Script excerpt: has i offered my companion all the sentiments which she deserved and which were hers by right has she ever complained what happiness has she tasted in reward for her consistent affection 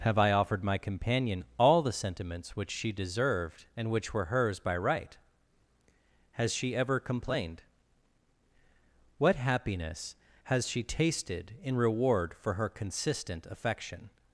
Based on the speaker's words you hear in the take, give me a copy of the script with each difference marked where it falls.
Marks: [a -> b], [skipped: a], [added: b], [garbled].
[has -> have] i offered my companion all the sentiments which she deserved and which were hers by right has she ever complained what happiness has she tasted in reward for her consistent affection